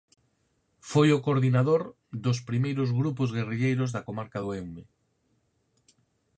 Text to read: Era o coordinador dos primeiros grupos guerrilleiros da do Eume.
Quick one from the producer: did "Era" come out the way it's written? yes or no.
no